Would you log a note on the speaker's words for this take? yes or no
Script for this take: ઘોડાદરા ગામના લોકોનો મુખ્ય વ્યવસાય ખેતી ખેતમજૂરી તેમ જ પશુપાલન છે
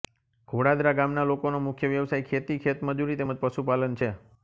no